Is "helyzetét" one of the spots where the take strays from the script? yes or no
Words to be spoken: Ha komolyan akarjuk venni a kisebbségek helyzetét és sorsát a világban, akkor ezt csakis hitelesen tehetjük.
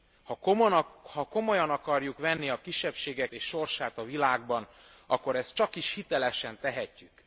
yes